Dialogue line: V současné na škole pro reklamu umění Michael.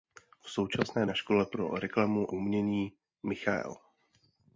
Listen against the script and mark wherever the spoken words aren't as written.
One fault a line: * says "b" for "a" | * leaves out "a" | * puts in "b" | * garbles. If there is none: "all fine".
all fine